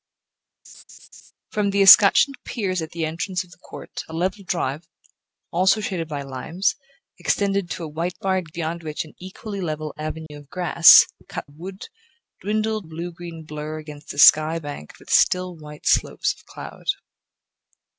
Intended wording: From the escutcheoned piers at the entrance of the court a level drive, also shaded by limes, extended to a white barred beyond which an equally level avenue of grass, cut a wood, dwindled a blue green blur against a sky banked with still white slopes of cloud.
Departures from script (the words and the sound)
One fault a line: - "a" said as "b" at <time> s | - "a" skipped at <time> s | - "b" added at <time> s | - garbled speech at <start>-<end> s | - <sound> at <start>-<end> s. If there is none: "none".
- laugh at 0.6-1.3 s
- dropout at 10.3-10.3 s